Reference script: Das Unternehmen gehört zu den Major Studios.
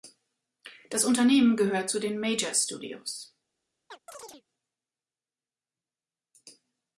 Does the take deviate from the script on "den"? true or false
false